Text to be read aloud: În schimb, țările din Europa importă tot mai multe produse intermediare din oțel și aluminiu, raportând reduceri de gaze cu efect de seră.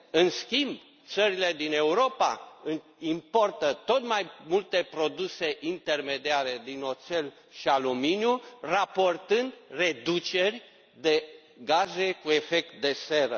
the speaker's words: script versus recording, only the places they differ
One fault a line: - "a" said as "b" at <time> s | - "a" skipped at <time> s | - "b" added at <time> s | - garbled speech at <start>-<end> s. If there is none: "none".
none